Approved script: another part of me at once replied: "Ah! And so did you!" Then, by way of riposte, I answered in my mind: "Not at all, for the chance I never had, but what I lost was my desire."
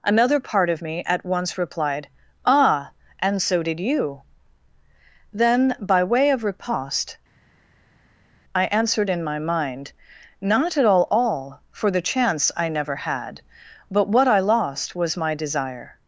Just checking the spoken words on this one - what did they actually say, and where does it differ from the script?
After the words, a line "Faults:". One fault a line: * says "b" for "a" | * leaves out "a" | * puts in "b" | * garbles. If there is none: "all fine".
another part of me at once replied: "Ah! And so did you!" Then, by way of riposte, I answered in my mind: "Not at all all, for the chance I never had, but what I lost was my desire."
Faults:
* puts in "all"